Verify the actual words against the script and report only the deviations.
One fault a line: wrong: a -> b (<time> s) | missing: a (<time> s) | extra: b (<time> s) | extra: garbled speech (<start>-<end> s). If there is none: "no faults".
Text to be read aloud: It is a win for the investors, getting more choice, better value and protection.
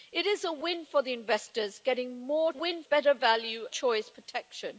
wrong: choice -> win (2.5 s)
wrong: and -> choice (3.7 s)